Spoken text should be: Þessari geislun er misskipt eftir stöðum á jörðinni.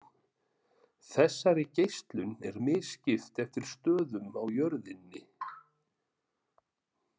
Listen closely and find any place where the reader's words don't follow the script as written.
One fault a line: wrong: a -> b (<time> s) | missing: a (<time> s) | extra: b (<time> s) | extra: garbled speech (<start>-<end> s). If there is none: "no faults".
no faults